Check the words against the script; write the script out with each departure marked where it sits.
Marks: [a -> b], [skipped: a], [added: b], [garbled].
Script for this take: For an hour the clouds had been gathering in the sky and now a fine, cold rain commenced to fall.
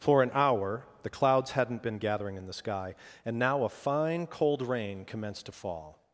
For an hour the clouds [had -> hadn't] been gathering in the sky and now a fine, cold rain commenced to fall.